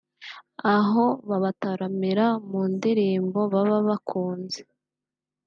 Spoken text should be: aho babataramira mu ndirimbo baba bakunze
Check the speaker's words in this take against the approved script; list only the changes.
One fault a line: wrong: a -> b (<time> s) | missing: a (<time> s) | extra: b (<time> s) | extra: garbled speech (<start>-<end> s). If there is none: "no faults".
no faults